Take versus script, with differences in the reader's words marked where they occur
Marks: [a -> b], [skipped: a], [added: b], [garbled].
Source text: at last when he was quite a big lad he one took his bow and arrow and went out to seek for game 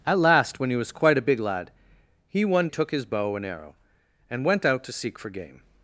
at last when he was quite a big lad he one took his bow and arrow and went out to seek for game